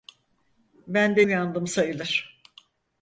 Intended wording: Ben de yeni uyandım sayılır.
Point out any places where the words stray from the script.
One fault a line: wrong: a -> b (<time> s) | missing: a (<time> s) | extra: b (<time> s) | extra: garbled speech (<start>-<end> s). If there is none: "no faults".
missing: yeni (1.2 s)